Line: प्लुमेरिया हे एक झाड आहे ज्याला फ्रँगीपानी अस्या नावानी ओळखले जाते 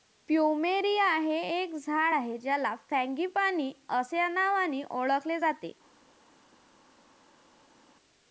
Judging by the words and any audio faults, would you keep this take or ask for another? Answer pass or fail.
pass